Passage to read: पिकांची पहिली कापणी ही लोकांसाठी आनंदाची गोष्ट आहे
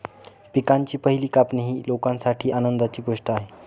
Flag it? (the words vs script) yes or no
no